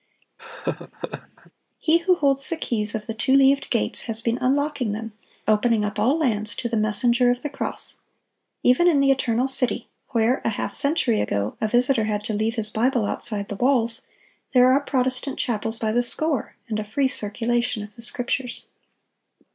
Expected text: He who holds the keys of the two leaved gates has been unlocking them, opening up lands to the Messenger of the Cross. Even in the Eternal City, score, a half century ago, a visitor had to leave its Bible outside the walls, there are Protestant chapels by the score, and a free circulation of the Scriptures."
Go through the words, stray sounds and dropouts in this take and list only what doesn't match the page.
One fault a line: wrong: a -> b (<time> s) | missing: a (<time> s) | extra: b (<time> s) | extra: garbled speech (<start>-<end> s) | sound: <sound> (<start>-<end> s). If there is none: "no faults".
sound: laugh (0.4-1.5 s)
extra: all (6.0 s)
wrong: score -> where (10.1 s)
wrong: its -> his (12.5 s)